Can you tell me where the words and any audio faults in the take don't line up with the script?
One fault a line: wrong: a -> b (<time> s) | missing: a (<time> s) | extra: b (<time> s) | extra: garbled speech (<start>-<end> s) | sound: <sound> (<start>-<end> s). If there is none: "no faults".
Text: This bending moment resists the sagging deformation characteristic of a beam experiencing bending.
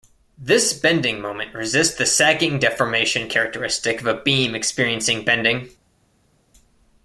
no faults